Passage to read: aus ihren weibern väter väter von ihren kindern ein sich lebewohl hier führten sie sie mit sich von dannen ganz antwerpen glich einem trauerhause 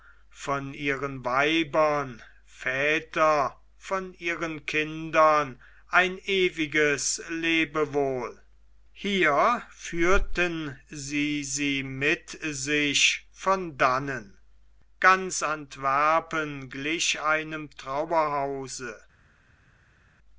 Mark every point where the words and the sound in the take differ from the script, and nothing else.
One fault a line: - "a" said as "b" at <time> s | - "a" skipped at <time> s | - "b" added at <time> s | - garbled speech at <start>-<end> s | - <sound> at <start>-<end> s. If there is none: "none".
- "aus" said as "von" at 0.3 s
- "väter" skipped at 3.6 s
- "sich" said as "ewiges" at 6.2 s